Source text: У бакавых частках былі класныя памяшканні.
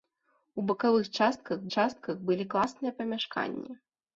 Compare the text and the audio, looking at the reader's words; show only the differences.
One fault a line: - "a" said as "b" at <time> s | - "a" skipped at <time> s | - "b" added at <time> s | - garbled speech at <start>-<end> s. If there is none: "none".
- "частках" added at 1.8 s